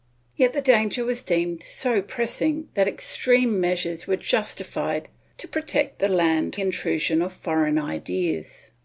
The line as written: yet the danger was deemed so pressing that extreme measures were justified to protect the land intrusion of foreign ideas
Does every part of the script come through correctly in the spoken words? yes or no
yes